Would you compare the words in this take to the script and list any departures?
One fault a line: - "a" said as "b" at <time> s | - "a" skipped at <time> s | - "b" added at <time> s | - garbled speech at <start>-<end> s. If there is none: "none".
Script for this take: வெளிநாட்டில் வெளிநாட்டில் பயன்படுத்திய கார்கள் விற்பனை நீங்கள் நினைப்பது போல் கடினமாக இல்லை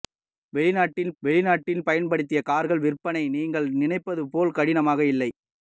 none